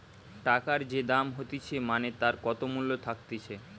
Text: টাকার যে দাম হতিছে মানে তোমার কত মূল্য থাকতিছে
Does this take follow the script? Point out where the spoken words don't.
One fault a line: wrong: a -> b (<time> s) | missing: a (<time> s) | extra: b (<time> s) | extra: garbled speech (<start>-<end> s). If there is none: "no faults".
wrong: তোমার -> তার (2.2 s)